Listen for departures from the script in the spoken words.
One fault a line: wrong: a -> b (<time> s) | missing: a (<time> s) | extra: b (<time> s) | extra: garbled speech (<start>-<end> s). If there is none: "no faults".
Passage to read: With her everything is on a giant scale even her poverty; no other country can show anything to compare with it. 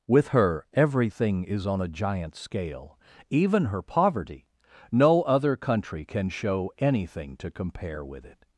no faults